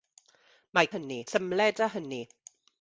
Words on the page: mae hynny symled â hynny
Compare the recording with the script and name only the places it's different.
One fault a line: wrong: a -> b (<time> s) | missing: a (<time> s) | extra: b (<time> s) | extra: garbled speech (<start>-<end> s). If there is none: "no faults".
no faults